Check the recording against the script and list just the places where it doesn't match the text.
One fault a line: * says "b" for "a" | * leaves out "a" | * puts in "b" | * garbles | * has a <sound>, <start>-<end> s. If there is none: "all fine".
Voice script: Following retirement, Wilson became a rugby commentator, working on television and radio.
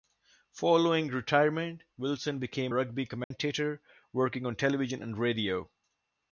* leaves out "a"
* has a dropout, 3.2-3.3 s